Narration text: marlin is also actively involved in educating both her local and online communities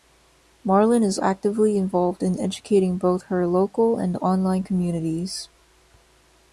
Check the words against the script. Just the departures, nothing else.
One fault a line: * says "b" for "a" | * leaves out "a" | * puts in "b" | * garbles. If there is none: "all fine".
* leaves out "also"